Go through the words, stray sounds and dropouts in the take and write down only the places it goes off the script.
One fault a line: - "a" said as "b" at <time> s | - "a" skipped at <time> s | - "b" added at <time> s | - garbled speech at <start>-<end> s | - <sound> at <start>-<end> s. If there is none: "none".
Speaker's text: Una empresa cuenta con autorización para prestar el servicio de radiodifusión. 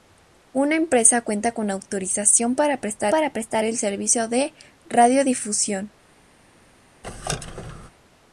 - "para prestar" added at 3.1 s
- squeak at 7.0-7.9 s